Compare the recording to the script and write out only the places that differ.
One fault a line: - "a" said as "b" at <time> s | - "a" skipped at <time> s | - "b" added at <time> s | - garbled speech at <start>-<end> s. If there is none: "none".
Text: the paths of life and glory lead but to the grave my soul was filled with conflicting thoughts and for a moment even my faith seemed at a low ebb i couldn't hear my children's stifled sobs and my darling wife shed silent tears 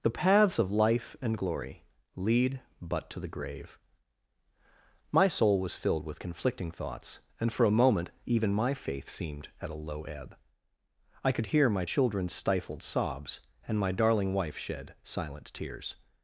- "couldn't" said as "could" at 11.3 s